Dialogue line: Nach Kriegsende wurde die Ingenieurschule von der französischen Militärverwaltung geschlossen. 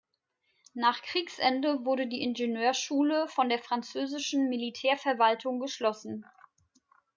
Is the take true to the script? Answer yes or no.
yes